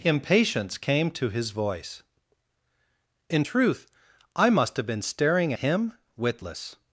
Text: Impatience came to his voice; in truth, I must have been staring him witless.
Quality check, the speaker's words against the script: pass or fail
pass